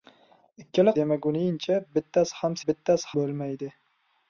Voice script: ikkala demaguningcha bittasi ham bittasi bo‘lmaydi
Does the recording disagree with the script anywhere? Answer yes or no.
no